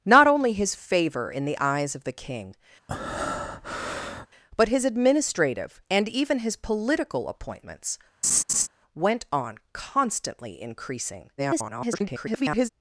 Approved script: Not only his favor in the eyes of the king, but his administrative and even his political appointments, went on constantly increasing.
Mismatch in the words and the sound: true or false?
true